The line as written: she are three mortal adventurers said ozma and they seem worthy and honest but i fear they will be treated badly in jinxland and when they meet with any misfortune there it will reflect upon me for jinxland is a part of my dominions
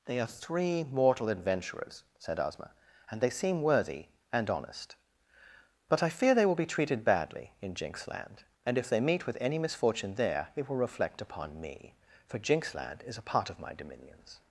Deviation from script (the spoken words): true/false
true